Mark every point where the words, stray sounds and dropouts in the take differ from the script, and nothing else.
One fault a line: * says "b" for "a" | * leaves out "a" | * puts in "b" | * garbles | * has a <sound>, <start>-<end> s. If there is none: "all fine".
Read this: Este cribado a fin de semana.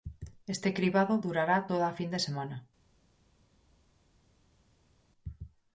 * puts in "durará toda"